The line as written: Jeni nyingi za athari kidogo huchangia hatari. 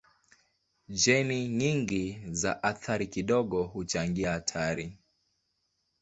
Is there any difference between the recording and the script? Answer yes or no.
no